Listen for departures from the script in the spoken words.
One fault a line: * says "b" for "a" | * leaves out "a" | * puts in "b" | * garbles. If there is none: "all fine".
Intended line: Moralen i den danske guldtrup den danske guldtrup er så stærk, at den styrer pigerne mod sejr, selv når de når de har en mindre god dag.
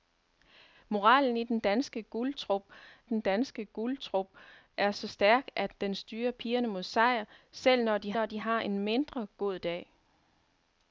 all fine